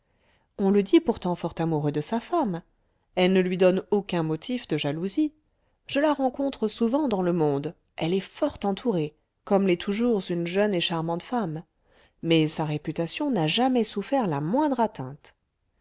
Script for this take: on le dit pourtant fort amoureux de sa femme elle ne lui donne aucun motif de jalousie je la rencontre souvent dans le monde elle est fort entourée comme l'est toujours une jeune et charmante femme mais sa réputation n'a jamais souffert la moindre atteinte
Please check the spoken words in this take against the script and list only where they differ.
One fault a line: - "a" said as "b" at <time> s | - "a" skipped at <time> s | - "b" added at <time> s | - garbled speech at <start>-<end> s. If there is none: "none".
none